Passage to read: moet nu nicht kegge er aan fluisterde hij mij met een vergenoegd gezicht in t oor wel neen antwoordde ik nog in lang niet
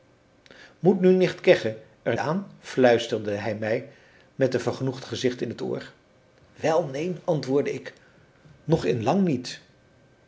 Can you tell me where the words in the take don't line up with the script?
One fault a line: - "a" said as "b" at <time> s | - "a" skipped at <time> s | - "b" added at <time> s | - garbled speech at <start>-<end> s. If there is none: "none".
none